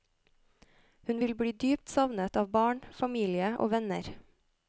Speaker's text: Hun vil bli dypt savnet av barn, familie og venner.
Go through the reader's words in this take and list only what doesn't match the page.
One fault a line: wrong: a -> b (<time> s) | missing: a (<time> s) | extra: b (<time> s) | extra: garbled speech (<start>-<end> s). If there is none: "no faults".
no faults